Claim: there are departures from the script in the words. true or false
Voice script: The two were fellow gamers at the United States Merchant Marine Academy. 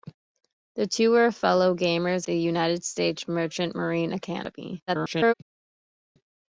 true